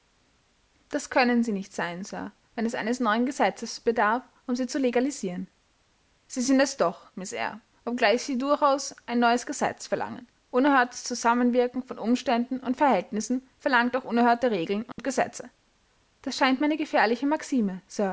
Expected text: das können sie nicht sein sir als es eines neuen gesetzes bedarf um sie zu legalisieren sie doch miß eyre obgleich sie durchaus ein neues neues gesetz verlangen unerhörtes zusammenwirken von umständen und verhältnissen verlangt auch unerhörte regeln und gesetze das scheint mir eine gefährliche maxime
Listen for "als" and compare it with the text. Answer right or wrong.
wrong